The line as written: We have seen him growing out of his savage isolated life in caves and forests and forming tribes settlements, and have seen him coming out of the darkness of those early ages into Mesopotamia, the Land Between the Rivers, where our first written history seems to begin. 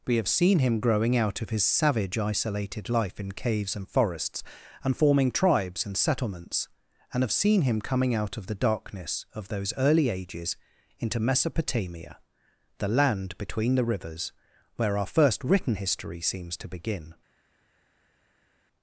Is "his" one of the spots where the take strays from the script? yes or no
no